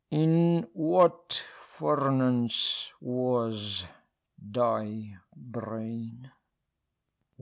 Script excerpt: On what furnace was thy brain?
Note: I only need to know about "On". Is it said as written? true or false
false